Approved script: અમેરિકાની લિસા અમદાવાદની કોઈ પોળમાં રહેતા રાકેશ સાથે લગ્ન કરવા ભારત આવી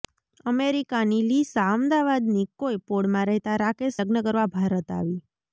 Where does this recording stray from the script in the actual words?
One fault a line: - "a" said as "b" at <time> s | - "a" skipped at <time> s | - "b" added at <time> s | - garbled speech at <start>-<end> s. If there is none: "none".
- "સાથે" skipped at 4.0 s